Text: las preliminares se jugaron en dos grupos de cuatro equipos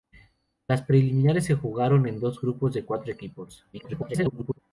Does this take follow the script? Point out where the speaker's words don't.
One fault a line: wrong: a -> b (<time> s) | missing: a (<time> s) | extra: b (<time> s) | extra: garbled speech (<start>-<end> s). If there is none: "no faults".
extra: garbled speech (3.7-4.6 s)